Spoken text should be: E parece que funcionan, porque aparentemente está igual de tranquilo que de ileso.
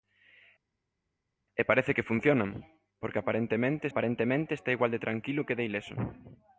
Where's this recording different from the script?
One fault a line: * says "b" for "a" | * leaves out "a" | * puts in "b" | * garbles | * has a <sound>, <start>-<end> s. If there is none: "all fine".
* puts in "aparentemente"